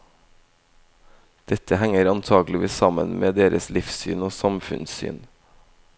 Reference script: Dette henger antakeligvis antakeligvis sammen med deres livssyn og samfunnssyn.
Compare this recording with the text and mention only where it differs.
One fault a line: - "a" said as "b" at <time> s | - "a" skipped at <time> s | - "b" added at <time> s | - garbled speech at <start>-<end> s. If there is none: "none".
- "antakeligvis" skipped at 2.7 s